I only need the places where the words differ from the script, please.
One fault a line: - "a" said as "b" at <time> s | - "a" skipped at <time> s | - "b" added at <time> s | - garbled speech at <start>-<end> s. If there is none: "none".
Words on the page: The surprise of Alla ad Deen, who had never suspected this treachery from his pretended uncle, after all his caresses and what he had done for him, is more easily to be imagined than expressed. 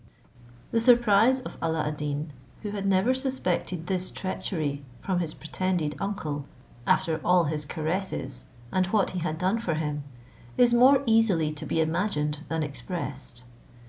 none